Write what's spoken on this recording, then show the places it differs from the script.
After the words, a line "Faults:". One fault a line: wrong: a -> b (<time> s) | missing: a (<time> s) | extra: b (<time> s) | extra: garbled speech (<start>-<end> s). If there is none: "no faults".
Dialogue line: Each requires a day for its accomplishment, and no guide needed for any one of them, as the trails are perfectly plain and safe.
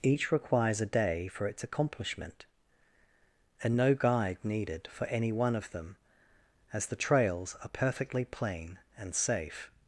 Each requires a day for its accomplishment, and no guide needed for any one of them, as the trails are perfectly plain and safe.
Faults:
no faults